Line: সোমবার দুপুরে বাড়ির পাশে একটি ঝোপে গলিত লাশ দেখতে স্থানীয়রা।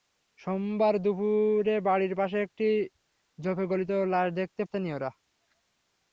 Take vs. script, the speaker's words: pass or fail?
pass